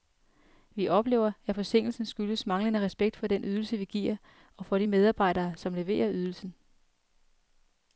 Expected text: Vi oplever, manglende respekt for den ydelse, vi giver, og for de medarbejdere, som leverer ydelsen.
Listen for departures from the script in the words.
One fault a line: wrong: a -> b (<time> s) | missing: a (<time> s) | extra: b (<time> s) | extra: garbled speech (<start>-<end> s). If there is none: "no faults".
extra: at forsinkelsen skyldes (1.4 s)